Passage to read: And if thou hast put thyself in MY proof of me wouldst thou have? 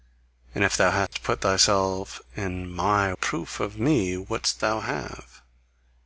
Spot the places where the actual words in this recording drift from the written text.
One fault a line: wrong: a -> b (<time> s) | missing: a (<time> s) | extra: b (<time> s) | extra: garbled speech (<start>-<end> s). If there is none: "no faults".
no faults